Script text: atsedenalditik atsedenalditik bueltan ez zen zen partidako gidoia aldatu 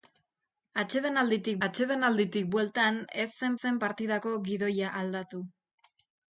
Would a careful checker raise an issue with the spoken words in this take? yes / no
no